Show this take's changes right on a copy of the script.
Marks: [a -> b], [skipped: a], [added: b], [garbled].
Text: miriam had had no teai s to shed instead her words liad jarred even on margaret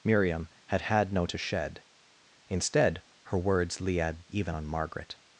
miriam had had no [skipped: teai s] to shed instead her words liad [skipped: jarred] even on margaret